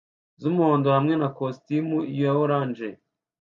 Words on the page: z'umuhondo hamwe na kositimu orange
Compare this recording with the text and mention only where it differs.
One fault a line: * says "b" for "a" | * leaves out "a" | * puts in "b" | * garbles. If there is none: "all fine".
* puts in "ya"